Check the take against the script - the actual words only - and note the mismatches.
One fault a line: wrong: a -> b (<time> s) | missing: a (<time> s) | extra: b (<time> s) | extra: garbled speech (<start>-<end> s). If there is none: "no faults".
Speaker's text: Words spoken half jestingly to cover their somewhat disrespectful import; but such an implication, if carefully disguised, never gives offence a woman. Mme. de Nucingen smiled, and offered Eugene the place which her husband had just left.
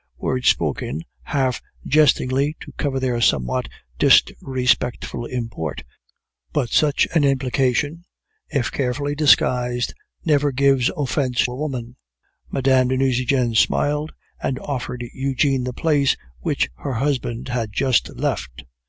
no faults